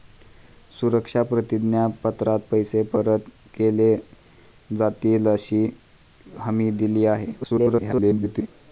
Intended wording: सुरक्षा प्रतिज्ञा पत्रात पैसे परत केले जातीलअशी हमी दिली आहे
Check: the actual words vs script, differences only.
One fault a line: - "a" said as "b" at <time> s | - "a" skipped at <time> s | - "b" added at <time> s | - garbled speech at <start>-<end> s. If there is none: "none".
- garbled speech at 7.4-8.5 s